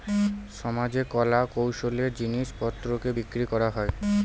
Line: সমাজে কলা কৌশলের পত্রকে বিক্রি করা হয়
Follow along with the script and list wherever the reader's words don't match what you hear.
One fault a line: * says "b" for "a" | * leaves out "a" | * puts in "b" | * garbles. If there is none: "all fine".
* puts in "জিনিস"